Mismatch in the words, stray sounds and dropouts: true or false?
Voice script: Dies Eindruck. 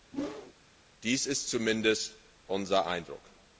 true